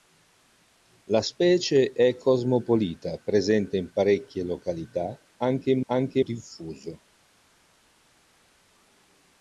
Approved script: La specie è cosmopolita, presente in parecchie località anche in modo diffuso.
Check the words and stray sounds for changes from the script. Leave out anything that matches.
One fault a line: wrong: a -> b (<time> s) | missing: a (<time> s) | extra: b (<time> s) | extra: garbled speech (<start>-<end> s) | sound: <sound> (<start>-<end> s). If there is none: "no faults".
wrong: modo -> anche (5.9 s)